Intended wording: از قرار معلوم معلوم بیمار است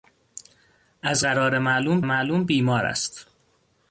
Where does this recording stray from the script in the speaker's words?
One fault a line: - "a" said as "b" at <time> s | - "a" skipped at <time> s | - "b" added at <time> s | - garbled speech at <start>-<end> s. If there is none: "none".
none